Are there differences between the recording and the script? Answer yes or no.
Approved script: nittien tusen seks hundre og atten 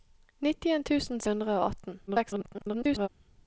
yes